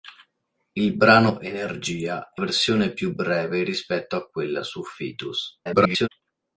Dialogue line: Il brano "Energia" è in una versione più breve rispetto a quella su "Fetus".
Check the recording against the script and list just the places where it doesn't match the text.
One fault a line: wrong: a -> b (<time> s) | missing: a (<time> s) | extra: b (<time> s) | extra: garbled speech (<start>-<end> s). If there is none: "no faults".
missing: in una (2.4 s)
extra: garbled speech (5.6-6.1 s)